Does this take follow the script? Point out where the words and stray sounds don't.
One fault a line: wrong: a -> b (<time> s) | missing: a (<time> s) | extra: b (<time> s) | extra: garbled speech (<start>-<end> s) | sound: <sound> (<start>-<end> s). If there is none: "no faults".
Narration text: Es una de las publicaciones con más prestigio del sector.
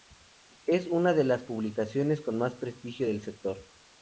no faults